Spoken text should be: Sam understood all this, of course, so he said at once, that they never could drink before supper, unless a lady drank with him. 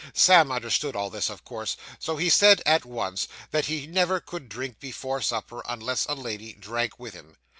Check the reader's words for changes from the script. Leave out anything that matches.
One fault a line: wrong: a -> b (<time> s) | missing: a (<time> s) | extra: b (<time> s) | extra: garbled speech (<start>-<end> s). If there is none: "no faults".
wrong: they -> he (3.6 s)